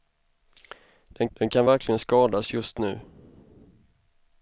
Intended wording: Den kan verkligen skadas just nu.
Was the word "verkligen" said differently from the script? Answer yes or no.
no